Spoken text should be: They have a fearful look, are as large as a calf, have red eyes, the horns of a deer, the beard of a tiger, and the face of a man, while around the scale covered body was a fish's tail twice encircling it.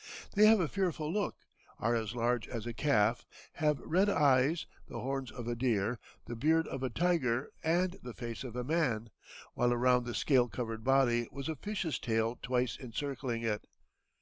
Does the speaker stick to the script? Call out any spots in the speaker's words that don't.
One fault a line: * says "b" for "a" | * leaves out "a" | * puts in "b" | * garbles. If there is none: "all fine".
all fine